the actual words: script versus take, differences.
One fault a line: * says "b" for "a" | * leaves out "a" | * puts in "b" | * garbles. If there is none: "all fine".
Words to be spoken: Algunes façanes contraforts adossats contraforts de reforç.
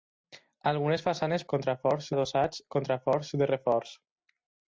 all fine